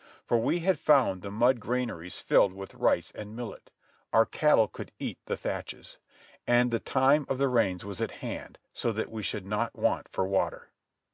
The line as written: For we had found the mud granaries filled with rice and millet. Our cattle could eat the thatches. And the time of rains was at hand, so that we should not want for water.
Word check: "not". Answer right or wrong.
right